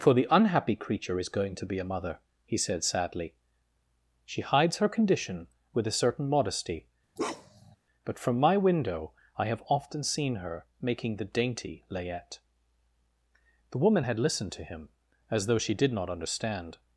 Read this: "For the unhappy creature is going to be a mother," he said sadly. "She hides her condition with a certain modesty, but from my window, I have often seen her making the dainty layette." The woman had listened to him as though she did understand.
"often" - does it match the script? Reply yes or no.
yes